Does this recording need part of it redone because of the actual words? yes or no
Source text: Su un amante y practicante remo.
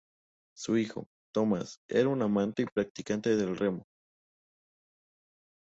yes